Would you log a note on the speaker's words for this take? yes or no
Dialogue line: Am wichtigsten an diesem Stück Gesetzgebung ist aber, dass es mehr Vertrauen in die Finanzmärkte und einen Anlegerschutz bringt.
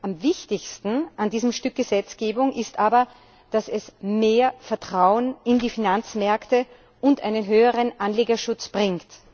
yes